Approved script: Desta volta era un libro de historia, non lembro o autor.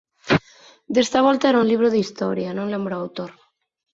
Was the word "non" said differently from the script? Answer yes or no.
no